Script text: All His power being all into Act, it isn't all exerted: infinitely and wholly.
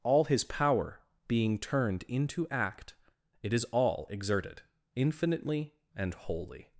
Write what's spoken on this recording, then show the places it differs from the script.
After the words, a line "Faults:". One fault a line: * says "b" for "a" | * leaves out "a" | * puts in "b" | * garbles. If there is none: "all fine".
All His power being turned into Act, it is all exerted: infinitely and wholly.
Faults:
* says "turned" for "all"
* says "is" for "isn't"